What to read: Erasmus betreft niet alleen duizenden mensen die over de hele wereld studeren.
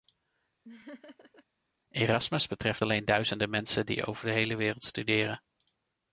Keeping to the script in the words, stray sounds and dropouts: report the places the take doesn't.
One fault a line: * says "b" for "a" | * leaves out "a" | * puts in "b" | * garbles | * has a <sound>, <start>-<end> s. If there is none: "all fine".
* has a laugh, 0.6-1.4 s
* leaves out "niet"